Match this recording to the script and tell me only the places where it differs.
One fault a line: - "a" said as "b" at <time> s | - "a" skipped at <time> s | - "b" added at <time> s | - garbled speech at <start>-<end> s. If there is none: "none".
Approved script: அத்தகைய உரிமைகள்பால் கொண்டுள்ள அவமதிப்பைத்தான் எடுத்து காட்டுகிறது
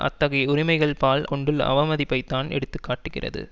none